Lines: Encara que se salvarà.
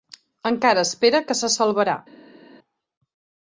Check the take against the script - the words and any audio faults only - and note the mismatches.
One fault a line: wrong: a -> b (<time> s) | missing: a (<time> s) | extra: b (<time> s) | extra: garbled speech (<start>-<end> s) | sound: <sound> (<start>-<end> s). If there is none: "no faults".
extra: espera (0.9 s)